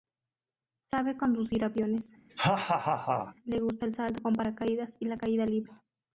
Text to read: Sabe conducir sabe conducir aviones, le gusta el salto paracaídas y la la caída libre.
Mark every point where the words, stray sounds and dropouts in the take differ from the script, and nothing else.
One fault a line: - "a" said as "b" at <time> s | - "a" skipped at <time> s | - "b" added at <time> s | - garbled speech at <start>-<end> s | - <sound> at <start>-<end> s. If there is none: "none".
- "sabe conducir" skipped at 1.6 s
- laugh at 2.3-3.4 s
- "con" added at 4.2 s
- "la" skipped at 5.2 s